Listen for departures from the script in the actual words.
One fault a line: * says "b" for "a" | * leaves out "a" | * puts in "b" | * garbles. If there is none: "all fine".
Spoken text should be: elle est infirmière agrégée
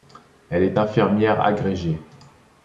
all fine